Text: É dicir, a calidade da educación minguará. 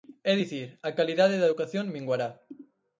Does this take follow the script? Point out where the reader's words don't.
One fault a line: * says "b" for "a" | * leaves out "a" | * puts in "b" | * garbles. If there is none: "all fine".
all fine